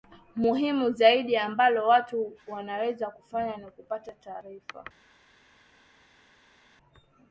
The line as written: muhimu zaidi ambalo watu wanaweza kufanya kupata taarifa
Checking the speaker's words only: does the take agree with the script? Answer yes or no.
no